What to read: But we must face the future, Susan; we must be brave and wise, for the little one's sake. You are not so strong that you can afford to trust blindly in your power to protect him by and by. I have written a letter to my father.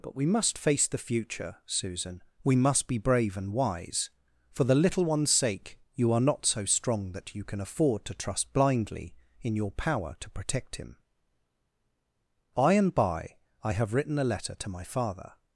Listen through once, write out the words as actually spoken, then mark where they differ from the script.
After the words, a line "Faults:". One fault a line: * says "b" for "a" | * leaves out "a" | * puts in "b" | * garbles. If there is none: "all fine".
But we must face the future, Susan; we must be brave and wise, for the little one's sake. You are not so strong that you can afford to trust blindly in your power to protect him by and by. I have written a letter to my father.
Faults:
all fine